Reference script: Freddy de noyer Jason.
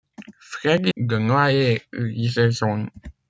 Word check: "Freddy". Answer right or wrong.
right